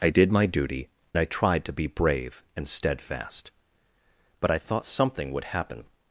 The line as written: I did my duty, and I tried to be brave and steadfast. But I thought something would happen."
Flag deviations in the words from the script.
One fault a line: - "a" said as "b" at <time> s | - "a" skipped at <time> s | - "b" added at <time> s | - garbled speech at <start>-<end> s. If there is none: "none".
- "and" skipped at 0.9 s